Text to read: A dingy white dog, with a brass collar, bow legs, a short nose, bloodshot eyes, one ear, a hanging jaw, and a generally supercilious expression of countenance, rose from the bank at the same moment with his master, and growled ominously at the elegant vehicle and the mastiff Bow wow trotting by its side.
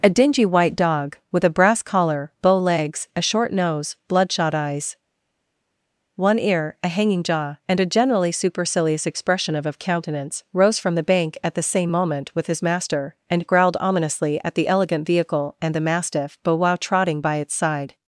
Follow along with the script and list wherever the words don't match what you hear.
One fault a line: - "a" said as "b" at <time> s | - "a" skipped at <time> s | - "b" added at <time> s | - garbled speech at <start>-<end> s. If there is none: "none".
- "of" added at 9.7 s